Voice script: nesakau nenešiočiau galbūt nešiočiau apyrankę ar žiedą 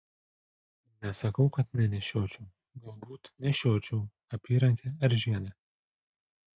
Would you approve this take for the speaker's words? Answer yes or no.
no